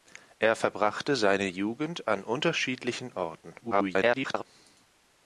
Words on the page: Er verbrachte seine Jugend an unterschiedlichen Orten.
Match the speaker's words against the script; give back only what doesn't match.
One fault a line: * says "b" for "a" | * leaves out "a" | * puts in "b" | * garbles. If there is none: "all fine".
* garbles